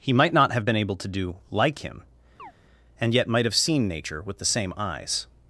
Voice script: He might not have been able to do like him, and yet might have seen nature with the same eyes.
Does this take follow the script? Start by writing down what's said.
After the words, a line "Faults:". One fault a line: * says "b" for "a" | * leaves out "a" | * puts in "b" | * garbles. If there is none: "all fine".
He might not have been able to do like him, and yet might have seen nature with the same eyes.
Faults:
all fine